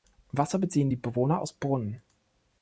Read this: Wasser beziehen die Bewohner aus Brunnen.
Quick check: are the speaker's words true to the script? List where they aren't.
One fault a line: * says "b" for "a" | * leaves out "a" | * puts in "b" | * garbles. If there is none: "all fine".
all fine